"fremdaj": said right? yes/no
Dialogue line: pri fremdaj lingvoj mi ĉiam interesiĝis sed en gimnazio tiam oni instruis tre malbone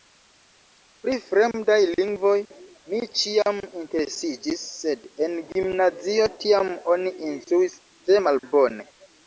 yes